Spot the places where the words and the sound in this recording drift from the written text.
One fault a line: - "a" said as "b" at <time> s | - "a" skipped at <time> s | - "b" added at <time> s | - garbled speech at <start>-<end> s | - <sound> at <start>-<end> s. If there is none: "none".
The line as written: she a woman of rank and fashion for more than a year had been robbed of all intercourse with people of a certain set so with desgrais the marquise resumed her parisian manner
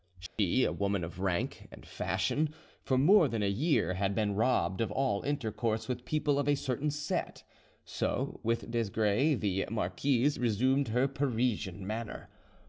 - dropout at 0.3-0.4 s